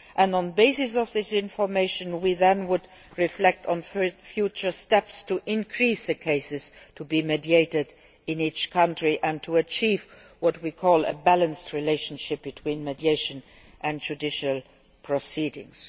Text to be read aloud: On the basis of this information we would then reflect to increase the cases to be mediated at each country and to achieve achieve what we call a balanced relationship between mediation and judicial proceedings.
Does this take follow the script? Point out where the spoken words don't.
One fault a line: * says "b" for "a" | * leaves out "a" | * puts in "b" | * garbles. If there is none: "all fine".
* puts in "on future steps"
* says "in" for "at"
* leaves out "achieve"